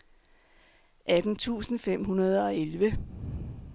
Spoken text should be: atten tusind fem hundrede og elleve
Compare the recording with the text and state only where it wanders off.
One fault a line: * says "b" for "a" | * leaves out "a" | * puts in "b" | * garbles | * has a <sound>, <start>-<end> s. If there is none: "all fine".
all fine